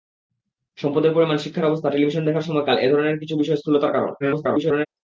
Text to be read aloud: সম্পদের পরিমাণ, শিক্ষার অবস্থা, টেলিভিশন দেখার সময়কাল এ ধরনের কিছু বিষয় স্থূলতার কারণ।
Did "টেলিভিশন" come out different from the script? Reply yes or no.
no